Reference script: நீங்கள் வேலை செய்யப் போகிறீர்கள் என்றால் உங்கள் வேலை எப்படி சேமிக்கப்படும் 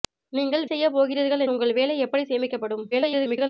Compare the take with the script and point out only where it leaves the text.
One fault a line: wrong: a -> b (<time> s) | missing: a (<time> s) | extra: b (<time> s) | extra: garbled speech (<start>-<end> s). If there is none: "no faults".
missing: வேலை (0.6 s)
missing: என்றால் (1.4 s)
extra: garbled speech (2.9-3.5 s)